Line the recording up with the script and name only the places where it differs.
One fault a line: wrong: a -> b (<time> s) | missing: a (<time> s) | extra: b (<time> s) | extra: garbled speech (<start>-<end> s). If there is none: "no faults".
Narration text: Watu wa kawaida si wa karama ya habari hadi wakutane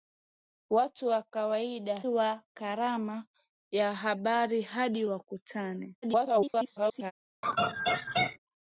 missing: si (2.0 s)
extra: garbled speech (6.0-7.1 s)